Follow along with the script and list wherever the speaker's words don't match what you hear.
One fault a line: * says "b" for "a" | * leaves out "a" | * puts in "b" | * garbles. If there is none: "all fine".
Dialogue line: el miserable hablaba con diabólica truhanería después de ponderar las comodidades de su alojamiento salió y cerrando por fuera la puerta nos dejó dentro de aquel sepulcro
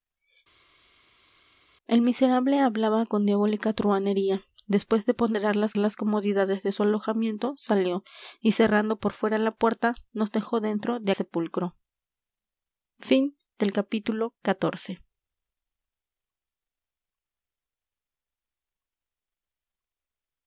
* puts in "las"
* leaves out "aquel"